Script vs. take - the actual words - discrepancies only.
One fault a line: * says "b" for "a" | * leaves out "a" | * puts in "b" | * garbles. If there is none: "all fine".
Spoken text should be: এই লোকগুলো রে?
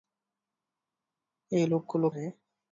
all fine